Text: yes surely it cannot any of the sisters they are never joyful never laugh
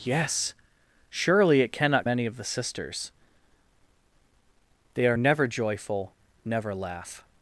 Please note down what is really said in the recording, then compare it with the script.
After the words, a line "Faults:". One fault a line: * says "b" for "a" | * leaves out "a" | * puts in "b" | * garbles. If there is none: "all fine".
yes surely it cannot any of the sisters they are never joyful never laugh
Faults:
all fine